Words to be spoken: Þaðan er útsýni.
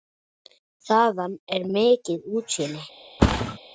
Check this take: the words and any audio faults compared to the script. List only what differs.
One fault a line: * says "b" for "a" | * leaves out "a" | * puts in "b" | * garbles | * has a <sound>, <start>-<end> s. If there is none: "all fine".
* puts in "mikið"
* has a thud, 3.2-3.6 s